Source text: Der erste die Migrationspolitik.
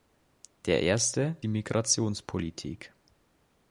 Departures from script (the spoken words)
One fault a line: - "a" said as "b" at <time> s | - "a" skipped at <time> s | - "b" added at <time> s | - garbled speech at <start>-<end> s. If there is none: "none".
none